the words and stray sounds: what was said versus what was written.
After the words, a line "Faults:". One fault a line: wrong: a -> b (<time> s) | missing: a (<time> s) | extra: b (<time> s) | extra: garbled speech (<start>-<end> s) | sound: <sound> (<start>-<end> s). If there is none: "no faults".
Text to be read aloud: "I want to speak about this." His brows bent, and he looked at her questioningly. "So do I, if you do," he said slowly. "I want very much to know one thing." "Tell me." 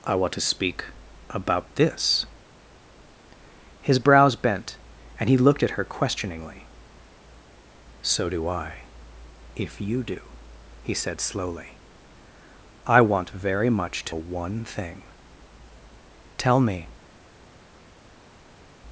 "I want to speak about this." His brows bent, and he looked at her questioningly. "So do I, if you do," he said slowly. "I want very much to one thing." "Tell me."
Faults:
missing: know (14.2 s)